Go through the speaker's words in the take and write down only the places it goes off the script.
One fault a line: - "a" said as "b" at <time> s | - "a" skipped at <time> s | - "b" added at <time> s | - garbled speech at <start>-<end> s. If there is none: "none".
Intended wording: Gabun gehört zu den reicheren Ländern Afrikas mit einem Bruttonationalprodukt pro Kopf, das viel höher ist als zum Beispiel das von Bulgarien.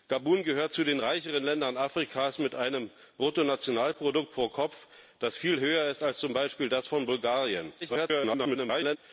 - garbled speech at 7.8-9.0 s